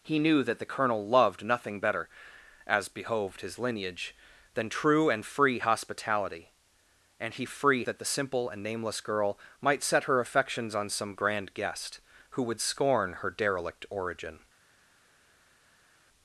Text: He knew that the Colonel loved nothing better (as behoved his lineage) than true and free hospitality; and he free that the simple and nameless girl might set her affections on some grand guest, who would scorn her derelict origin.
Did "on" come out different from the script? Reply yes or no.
no